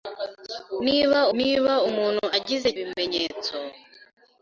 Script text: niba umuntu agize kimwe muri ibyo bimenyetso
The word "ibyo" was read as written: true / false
false